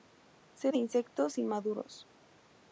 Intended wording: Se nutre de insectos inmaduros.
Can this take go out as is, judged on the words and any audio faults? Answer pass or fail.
fail